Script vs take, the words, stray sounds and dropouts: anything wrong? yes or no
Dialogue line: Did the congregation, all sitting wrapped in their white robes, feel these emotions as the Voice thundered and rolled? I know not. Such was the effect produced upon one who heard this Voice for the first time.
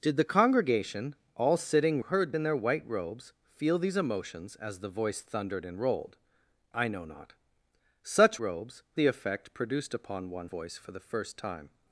yes